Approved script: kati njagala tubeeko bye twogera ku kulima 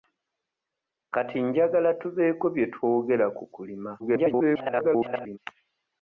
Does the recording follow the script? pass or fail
fail